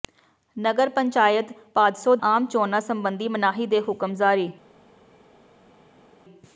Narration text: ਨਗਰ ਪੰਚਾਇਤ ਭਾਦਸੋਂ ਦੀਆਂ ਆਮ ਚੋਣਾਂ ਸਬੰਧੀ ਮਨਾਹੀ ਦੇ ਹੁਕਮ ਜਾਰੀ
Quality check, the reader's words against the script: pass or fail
fail